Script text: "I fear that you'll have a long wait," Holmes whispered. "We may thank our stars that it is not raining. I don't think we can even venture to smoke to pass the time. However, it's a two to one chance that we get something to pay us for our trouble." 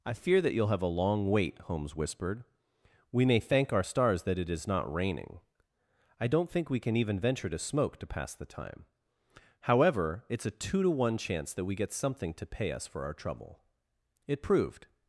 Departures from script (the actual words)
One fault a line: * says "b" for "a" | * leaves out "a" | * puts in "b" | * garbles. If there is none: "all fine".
* puts in "It proved"